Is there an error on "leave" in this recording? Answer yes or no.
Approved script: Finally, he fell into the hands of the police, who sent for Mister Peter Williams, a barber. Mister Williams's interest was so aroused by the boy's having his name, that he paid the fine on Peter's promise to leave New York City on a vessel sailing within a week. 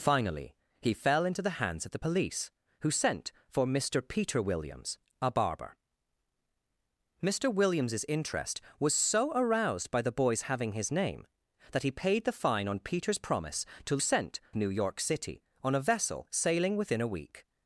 yes